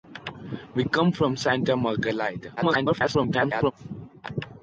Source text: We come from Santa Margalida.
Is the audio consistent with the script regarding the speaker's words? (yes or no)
no